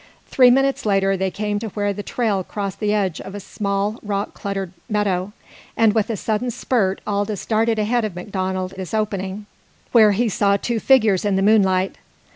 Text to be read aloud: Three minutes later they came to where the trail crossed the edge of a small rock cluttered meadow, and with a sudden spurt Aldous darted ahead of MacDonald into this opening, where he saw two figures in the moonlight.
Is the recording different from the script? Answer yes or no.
yes